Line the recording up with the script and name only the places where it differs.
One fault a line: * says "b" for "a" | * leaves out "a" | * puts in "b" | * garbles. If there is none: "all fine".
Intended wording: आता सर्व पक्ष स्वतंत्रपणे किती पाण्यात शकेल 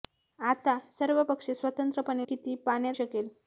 all fine